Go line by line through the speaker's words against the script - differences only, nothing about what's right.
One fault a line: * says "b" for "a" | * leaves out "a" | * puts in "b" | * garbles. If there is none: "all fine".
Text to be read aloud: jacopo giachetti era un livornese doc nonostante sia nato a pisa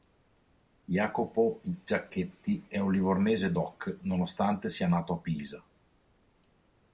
* says "è" for "era"